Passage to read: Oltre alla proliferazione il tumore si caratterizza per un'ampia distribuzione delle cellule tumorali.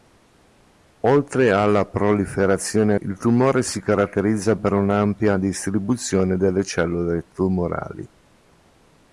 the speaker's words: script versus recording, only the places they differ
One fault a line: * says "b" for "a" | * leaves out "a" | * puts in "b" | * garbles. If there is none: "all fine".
all fine